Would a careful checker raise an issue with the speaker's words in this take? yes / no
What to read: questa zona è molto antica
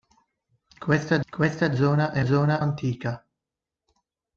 yes